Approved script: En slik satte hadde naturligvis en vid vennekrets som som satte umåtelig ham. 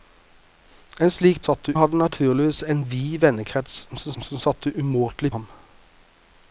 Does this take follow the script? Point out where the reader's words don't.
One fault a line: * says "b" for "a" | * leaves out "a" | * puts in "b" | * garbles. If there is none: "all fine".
all fine